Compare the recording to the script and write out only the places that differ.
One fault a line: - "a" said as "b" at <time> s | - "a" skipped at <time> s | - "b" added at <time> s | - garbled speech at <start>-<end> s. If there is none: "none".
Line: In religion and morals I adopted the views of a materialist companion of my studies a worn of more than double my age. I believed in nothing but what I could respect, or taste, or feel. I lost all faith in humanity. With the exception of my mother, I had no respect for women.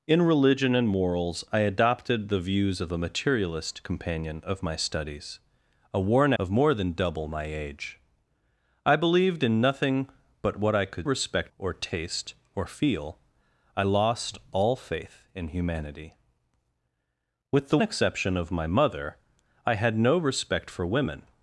none